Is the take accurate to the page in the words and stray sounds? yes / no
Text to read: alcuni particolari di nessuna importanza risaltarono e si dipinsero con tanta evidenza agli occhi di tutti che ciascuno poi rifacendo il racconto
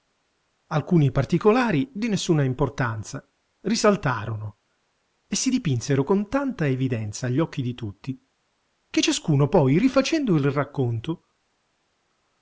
yes